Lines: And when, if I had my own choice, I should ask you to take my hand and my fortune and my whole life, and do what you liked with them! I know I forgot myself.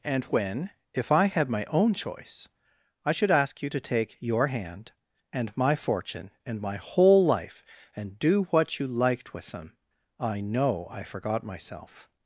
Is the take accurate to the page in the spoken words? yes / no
no